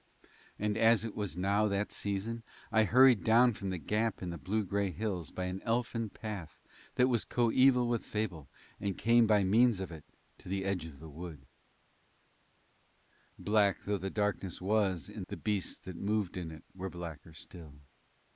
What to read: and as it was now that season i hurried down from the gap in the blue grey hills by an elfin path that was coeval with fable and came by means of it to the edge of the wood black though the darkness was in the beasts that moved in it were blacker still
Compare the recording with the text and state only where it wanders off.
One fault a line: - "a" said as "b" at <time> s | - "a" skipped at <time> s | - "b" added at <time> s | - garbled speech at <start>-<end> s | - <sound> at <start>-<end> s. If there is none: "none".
none